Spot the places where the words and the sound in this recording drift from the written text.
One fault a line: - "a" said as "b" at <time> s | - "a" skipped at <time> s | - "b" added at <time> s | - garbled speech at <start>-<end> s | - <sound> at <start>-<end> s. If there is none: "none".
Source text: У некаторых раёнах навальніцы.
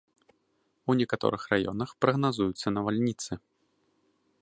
- "прагназуюцца" added at 2.1 s